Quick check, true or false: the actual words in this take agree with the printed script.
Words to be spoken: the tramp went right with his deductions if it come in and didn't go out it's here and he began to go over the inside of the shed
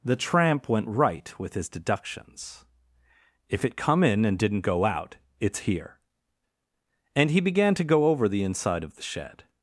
true